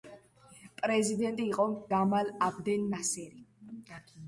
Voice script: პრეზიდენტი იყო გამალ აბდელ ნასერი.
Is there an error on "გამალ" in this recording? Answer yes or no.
no